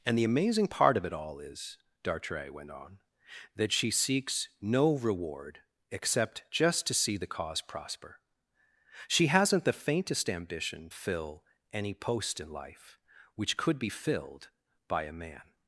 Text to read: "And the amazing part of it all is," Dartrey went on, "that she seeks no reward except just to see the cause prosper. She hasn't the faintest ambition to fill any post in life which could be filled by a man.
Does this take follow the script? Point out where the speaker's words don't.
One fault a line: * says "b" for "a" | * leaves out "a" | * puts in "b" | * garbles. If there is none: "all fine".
* leaves out "to"